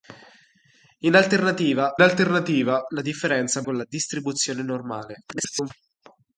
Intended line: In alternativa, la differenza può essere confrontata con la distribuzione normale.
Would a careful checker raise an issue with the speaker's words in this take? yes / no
yes